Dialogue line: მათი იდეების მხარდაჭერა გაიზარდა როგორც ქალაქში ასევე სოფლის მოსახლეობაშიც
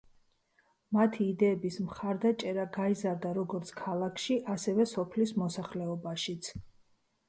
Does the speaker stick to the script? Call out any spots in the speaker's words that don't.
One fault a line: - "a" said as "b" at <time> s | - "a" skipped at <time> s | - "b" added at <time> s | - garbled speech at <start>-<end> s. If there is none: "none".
none